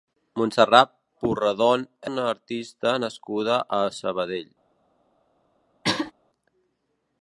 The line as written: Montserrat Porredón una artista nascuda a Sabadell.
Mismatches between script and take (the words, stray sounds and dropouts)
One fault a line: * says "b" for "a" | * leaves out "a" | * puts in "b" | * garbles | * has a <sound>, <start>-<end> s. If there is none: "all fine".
* has a throat clearing, 5.8-6.1 s